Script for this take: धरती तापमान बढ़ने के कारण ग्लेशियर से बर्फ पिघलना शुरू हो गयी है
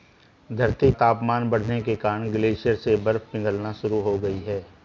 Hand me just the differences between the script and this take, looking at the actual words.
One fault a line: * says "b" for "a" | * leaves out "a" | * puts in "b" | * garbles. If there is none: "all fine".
all fine